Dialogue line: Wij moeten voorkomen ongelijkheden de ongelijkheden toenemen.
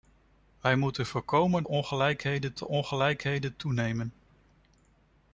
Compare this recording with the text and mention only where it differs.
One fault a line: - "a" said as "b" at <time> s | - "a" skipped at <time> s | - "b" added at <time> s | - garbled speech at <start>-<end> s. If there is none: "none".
none